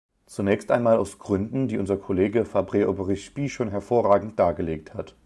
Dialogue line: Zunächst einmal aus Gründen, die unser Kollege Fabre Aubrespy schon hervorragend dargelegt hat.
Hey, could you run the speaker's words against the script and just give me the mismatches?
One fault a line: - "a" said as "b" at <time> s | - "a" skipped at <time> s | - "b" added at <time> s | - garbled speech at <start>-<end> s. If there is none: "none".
none